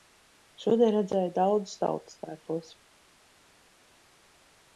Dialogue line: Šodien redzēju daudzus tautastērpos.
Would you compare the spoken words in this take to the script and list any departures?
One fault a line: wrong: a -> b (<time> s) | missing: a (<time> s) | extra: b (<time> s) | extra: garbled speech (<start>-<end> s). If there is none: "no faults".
no faults